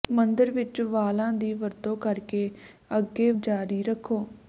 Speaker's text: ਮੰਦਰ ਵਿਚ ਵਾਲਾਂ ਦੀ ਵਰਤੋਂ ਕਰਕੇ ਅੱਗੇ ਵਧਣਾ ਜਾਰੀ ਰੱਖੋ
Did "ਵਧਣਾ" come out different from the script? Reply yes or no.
yes